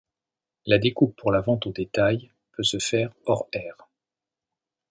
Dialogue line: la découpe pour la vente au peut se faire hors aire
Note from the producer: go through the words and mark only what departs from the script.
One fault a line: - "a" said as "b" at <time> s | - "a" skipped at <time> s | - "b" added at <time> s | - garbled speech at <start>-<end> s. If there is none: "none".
- "détail" added at 1.7 s